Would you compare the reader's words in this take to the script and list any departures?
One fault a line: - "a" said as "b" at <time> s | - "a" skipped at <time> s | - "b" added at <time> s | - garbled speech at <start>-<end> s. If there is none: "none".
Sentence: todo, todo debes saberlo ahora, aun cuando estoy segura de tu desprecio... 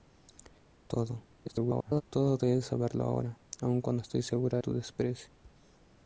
- garbled speech at 1.4-2.0 s
- "de" skipped at 4.6 s